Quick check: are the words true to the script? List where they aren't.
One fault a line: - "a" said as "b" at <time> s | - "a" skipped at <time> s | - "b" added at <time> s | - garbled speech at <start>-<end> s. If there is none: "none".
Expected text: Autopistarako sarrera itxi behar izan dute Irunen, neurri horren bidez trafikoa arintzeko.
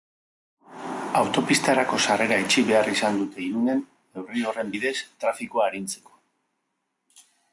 none